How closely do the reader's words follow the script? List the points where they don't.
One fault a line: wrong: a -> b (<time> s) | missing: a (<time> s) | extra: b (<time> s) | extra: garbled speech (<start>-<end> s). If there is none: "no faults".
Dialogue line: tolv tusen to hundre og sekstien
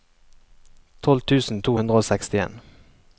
no faults